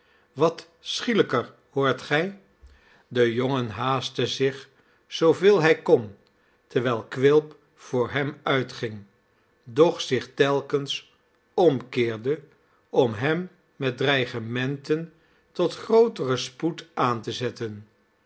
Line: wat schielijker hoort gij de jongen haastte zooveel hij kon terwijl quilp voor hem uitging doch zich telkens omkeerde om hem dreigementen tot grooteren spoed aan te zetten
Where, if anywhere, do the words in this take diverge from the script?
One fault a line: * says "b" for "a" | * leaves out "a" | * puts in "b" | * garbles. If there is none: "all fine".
* puts in "zich"
* puts in "met"